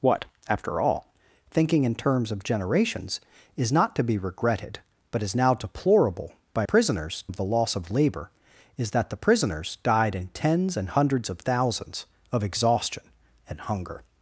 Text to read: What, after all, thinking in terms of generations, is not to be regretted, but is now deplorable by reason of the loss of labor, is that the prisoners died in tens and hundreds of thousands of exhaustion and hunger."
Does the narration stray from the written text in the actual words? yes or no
yes